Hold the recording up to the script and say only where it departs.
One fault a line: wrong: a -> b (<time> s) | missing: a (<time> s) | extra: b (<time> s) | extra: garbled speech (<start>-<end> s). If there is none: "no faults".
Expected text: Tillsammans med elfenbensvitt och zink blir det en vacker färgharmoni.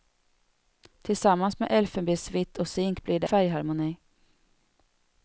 missing: en vacker (3.3 s)